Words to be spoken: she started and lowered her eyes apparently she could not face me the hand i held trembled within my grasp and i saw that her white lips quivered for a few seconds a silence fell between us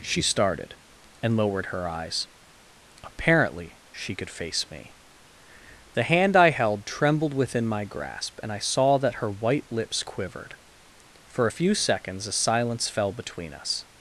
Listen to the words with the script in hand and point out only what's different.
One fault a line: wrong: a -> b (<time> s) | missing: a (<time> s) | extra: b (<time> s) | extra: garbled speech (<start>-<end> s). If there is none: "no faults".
missing: not (4.3 s)